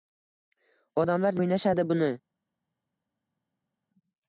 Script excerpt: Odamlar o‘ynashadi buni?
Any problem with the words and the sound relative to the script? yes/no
no